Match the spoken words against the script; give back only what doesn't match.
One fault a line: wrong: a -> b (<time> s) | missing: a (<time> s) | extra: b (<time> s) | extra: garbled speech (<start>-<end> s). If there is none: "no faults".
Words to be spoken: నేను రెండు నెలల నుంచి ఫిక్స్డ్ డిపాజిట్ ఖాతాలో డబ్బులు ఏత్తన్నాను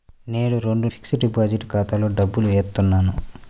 missing: నెలల నుంచి (0.9 s)